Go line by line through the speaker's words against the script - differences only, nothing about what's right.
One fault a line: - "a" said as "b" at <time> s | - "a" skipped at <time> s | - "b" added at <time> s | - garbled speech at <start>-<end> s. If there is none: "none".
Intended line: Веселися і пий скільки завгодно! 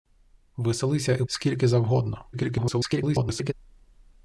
- "пий" skipped at 1.2 s
- garbled speech at 2.3-3.5 s